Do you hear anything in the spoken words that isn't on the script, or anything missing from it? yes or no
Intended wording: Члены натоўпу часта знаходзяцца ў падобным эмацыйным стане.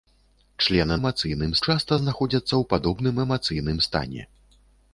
yes